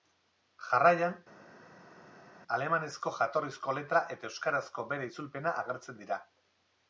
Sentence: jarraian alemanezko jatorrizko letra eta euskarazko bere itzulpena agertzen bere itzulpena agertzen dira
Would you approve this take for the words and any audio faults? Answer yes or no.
no